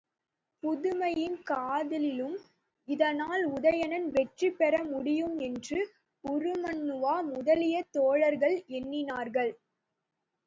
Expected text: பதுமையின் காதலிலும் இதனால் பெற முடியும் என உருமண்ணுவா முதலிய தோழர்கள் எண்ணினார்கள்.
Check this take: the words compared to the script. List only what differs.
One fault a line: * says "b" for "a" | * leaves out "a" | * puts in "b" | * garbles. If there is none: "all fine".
* puts in "உதயணன் வெற்றி"
* says "என்று" for "என"